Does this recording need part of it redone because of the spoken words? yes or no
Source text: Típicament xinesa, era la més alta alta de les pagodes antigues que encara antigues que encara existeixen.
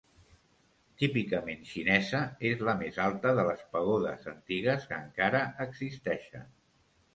yes